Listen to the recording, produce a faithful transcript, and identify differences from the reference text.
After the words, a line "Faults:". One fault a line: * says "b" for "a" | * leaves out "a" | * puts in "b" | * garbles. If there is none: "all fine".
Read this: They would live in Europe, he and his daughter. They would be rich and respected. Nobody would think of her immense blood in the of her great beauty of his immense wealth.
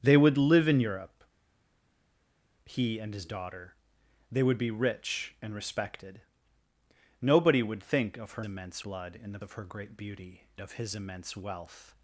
They would live in Europe, he and his daughter. They would be rich and respected. Nobody would think of her immense blood in the of her great beauty of his immense wealth.
Faults:
all fine